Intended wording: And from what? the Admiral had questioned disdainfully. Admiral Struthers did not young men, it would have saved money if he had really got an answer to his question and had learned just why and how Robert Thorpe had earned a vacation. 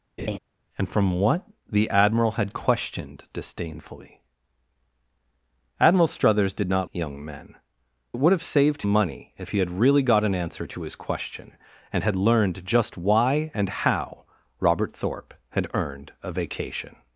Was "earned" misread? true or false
false